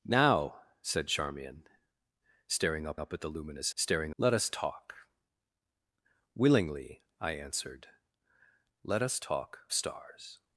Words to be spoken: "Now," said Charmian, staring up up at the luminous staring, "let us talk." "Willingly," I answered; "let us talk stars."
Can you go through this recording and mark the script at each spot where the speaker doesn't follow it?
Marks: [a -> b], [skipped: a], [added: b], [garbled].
"Now," said Charmian, staring up up at the luminous staring, "let us talk." "Willingly," I answered; "let us talk stars."